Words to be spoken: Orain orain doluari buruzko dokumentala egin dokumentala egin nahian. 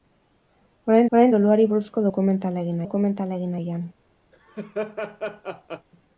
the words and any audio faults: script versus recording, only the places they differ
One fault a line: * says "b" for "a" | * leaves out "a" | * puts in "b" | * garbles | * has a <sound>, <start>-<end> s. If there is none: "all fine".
* has a laugh, 4.3-5.9 s